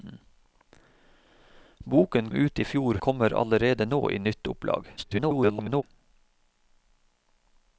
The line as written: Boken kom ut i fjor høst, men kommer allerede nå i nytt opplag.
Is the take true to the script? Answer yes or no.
no